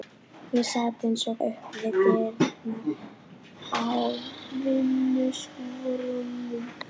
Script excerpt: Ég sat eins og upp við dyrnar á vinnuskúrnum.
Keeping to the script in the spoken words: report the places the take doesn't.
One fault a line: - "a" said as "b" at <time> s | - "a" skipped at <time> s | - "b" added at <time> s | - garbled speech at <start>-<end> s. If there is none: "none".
none